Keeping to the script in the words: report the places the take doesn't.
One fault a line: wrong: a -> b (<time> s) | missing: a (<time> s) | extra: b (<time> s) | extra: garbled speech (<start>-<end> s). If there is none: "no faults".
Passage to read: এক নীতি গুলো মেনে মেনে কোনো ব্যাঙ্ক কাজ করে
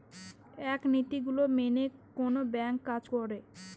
missing: মেনে (1.8 s)